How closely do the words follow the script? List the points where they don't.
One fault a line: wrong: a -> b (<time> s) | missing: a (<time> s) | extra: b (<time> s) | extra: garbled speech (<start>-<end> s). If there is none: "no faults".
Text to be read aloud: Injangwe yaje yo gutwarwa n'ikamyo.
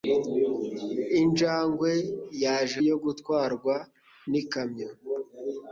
no faults